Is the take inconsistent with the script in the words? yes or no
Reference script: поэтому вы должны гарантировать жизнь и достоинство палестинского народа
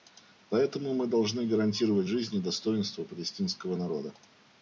yes